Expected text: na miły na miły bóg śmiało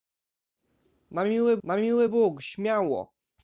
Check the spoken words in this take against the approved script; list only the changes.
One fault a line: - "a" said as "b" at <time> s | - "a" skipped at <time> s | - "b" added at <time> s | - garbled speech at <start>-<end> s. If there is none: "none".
none